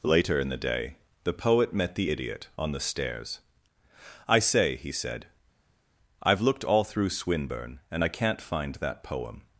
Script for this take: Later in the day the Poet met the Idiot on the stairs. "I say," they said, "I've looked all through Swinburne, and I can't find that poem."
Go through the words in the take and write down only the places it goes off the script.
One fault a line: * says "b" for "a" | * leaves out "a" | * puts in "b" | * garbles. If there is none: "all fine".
* says "he" for "they"